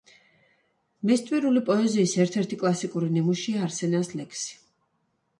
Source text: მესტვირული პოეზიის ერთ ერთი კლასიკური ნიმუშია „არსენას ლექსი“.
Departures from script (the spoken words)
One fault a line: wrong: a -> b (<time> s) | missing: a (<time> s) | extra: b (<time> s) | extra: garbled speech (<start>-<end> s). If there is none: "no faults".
no faults